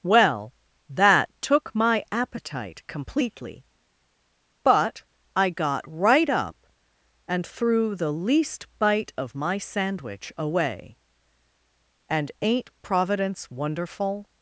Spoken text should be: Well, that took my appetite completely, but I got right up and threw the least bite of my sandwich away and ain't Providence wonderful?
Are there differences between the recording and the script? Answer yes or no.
no